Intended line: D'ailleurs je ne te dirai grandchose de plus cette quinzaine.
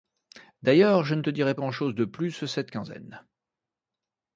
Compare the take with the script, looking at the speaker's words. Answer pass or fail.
pass